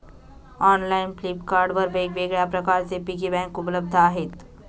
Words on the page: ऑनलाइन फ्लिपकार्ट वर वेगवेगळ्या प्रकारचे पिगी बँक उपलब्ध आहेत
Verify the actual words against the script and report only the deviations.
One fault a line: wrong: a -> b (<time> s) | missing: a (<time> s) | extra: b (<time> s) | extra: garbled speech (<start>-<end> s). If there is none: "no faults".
no faults